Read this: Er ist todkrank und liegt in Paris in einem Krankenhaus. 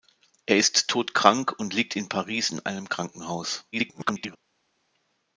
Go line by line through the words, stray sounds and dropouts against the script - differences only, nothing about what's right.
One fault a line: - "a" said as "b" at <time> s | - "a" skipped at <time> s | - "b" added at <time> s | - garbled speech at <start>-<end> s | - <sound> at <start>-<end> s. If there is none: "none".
- garbled speech at 3.7-4.4 s